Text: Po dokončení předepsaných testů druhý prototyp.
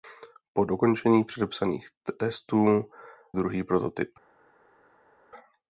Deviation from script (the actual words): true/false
false